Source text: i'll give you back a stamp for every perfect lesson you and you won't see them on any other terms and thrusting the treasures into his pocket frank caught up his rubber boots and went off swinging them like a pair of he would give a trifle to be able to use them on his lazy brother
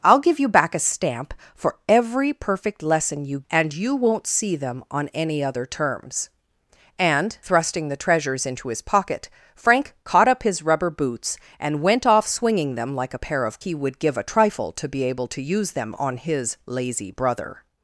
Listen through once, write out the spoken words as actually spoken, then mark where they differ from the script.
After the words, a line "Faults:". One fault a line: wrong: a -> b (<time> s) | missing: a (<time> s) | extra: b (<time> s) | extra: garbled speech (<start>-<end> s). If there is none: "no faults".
i'll give you back a stamp for every perfect lesson you and you won't see them on any other terms and thrusting the treasures into his pocket frank caught up his rubber boots and went off swinging them like a pair of he would give a trifle to be able to use them on his lazy brother
Faults:
no faults